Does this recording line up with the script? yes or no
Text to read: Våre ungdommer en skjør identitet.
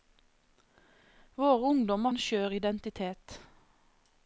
yes